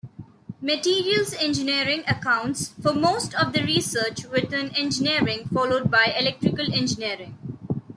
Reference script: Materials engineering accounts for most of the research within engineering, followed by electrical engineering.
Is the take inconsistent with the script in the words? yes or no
no